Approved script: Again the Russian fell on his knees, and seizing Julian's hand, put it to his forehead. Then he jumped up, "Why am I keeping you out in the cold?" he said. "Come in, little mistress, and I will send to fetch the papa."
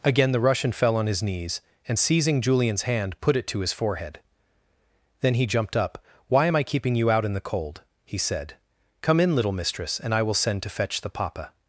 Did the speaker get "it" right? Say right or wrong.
right